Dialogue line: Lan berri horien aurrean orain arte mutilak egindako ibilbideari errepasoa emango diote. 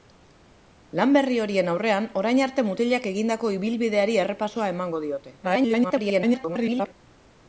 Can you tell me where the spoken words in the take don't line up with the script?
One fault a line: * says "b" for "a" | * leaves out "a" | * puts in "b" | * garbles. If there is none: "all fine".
* garbles